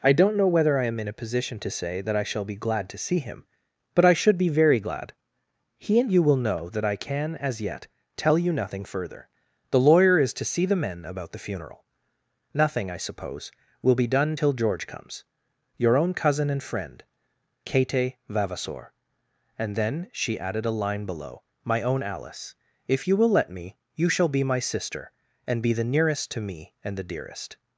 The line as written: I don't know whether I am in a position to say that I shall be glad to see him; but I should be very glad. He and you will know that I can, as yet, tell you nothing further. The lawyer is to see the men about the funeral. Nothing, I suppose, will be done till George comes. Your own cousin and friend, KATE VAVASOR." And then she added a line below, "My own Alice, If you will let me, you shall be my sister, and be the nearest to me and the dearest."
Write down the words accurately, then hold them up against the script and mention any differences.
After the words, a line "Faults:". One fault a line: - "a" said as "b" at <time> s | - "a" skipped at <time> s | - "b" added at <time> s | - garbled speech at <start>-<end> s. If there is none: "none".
I don't know whether I am in a position to say that I shall be glad to see him; but I should be very glad. He and you will know that I can, as yet, tell you nothing further. The lawyer is to see the men about the funeral. Nothing, I suppose, will be done till George comes. Your own cousin and friend, KATE VAVASOR." And then she added a line below, "My own Alice, If you will let me, you shall be my sister, and be the nearest to me and the dearest."
Faults:
none